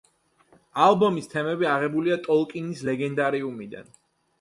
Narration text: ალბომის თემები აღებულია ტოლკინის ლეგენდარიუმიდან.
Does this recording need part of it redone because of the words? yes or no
no